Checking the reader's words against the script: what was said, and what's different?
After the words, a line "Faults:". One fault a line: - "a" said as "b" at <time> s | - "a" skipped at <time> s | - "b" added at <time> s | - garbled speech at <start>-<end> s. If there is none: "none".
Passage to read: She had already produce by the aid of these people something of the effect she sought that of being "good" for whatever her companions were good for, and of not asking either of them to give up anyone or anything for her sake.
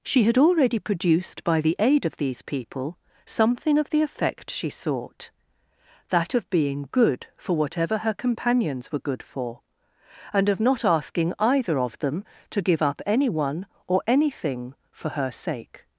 She had already produced by the aid of these people something of the effect she sought that of being "good" for whatever her companions were good for, and of not asking either of them to give up anyone or anything for her sake.
Faults:
- "produce" said as "produced" at 0.8 s